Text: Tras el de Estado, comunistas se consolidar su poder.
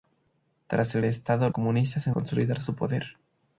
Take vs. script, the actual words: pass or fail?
pass